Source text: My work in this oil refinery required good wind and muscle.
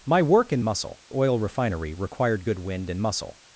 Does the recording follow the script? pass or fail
fail